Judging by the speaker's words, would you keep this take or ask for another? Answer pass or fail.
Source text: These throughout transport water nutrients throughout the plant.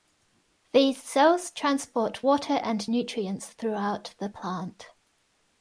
fail